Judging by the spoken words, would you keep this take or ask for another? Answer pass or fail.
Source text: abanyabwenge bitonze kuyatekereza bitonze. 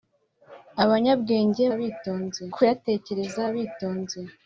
pass